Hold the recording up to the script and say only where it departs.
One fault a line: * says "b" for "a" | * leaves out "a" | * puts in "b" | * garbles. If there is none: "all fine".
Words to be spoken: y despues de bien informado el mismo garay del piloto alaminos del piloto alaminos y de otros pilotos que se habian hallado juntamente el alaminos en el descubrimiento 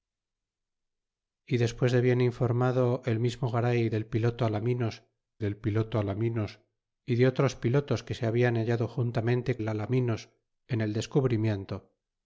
all fine